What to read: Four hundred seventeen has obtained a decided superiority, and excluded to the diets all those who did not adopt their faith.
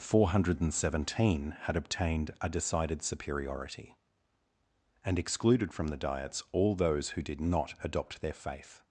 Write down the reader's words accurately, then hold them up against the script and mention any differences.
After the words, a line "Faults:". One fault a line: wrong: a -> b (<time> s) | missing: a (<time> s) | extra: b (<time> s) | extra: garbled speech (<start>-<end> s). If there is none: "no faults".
Four hundred seventeen had obtained a decided superiority, and excluded from the diets all those who did not adopt their faith.
Faults:
wrong: has -> had (1.6 s)
wrong: to -> from (5.7 s)